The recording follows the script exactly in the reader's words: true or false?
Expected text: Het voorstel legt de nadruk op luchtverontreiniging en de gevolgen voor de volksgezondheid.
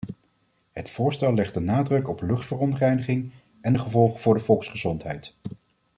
true